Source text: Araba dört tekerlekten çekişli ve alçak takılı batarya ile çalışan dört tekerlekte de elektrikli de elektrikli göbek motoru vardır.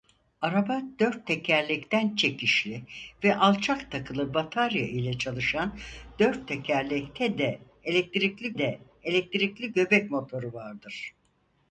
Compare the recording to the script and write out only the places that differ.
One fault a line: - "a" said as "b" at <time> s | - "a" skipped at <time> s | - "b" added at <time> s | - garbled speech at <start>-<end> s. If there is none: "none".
none